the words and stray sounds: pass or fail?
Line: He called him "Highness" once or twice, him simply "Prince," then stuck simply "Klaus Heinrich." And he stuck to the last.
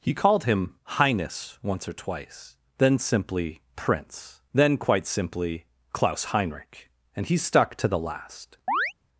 fail